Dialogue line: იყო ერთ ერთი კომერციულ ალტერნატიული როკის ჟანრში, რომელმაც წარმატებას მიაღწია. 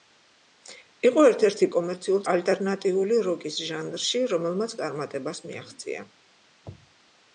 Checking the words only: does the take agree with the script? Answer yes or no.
yes